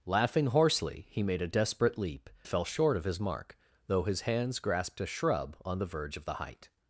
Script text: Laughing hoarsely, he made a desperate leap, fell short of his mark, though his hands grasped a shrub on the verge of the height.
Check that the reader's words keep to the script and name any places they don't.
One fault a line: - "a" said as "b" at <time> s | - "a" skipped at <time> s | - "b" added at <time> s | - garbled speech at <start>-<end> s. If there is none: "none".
none